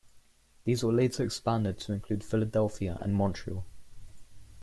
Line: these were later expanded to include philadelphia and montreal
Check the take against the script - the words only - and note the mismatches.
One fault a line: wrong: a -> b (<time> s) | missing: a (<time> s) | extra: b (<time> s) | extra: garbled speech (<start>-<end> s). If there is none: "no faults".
no faults